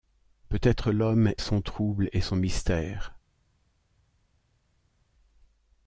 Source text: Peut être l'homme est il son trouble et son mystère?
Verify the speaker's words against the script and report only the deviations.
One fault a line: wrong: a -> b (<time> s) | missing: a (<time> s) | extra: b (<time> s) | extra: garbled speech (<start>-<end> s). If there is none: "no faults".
missing: est il (1.3 s)